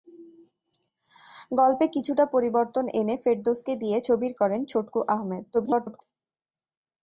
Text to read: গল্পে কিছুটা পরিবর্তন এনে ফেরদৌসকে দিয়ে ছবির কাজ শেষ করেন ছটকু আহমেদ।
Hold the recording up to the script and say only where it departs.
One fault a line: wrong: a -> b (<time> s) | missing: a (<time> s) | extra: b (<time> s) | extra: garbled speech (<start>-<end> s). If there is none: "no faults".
missing: কাজ শেষ (4.3 s)
extra: garbled speech (5.5-6.0 s)